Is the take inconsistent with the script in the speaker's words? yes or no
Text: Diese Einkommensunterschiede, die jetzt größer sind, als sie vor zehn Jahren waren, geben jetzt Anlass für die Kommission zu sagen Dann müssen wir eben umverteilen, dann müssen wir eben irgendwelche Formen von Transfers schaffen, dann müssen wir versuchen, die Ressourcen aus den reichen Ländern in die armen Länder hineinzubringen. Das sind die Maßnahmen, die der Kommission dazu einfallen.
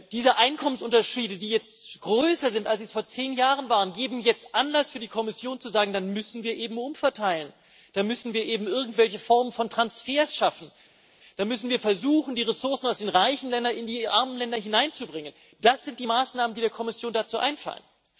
no